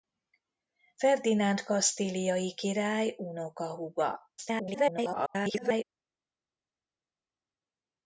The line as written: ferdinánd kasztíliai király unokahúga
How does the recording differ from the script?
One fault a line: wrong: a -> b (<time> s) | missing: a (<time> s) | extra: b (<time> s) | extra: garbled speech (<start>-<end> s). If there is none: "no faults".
extra: garbled speech (4.4-5.8 s)